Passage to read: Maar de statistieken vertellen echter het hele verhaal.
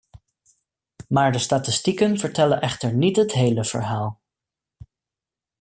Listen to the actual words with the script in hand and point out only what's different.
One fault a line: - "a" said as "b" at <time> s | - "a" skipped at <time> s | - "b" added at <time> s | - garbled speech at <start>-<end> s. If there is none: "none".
- "niet" added at 2.9 s